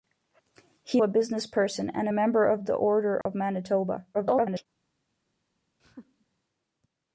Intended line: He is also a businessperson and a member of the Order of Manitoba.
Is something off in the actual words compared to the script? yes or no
yes